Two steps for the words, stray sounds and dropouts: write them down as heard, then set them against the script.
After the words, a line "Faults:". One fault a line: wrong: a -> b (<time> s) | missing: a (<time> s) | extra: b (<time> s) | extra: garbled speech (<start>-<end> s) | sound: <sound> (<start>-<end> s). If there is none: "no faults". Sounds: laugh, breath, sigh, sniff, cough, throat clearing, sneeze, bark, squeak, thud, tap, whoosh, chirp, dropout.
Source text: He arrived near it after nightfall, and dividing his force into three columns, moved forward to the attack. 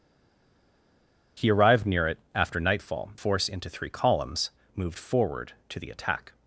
He arrived near it after nightfall, force into three columns, moved forward to the attack.
Faults:
missing: and dividing his (3.1 s)